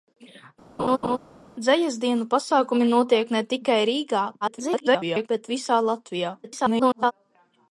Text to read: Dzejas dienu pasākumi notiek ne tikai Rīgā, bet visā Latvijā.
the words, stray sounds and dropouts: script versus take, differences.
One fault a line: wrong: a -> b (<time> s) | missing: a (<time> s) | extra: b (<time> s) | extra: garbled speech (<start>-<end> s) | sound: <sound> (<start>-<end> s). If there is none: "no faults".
sound: laugh (0.8-1.2 s)
extra: garbled speech (4.4-5.3 s)
extra: garbled speech (6.4-7.1 s)